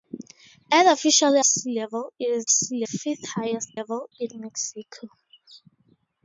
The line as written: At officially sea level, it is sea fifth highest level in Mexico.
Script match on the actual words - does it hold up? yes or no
yes